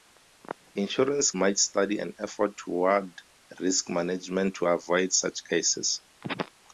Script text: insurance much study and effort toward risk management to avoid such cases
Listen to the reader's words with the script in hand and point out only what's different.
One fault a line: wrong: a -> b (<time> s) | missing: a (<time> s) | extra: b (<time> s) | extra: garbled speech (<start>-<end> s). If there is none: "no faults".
no faults